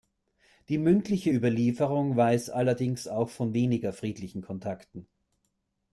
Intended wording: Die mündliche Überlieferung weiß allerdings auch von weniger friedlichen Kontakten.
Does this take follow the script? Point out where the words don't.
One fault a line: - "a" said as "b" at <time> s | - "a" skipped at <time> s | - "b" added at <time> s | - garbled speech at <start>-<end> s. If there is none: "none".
none